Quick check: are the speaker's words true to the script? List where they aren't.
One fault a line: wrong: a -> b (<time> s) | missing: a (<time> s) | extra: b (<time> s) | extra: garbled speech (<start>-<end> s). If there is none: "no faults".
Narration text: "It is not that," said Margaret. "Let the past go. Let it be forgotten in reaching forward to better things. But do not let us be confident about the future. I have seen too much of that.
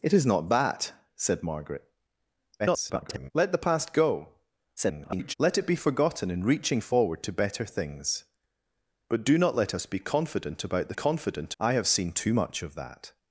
extra: garbled speech (2.6-3.3 s)
extra: garbled speech (4.8-5.3 s)
wrong: future -> confident (10.9 s)